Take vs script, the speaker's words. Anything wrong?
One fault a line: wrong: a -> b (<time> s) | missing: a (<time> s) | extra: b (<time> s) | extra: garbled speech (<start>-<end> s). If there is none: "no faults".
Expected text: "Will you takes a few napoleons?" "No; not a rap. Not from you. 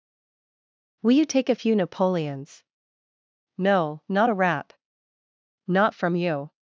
wrong: takes -> take (1.2 s)